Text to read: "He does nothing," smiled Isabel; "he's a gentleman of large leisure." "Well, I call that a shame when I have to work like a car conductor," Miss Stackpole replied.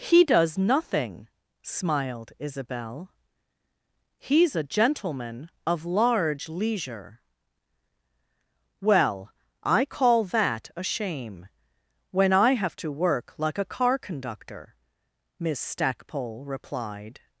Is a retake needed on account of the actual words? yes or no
no